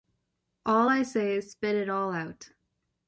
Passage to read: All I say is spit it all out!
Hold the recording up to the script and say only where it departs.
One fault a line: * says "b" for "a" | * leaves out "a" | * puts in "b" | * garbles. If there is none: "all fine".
all fine